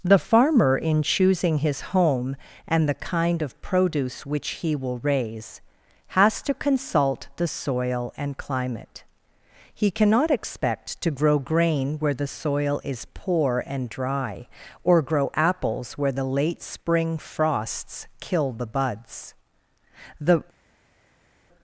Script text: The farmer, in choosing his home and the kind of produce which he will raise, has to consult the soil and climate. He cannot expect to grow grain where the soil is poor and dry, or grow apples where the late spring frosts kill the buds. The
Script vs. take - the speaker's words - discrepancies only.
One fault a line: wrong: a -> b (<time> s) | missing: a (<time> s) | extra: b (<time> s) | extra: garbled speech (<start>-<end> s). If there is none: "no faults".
no faults